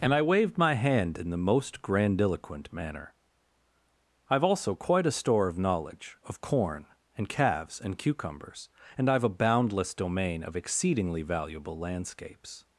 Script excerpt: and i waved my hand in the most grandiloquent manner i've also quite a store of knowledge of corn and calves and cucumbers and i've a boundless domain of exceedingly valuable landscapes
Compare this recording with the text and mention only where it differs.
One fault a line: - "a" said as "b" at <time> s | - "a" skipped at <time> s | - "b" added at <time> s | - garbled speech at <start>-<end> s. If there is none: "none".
none